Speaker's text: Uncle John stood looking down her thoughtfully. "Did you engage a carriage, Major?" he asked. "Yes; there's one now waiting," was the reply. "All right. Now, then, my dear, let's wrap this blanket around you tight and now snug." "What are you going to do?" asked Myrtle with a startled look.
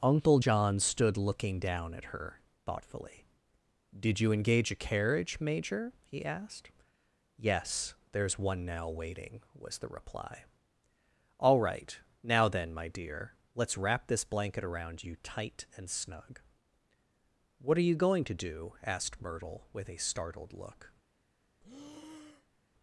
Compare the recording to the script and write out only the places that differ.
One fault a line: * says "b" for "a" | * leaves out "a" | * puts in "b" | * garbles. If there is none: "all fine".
* puts in "at"
* leaves out "now"